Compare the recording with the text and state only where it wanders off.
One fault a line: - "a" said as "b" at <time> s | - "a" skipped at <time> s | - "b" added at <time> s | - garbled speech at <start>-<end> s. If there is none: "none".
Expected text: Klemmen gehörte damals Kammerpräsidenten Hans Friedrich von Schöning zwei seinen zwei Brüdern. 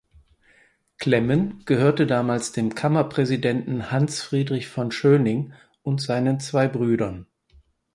- "dem" added at 2.5 s
- "zwei" said as "und" at 5.8 s